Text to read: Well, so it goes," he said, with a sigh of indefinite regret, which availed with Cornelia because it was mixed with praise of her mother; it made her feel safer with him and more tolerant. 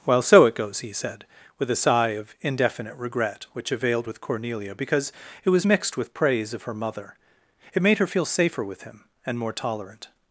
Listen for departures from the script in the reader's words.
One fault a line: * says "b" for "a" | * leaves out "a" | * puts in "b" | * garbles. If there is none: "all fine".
all fine